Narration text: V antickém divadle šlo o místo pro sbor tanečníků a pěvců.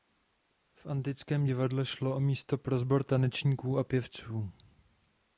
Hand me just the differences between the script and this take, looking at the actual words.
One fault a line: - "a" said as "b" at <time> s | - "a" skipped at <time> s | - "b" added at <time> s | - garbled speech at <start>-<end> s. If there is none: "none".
none